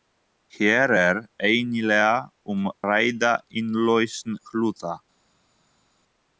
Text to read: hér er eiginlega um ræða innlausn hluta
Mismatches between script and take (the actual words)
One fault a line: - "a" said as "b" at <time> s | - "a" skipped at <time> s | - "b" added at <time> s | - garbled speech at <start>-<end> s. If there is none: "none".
none